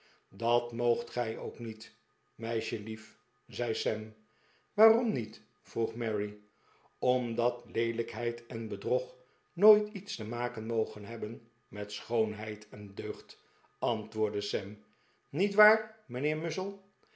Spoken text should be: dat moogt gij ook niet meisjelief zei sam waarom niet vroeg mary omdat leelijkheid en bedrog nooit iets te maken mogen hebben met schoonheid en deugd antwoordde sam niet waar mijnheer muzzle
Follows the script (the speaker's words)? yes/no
yes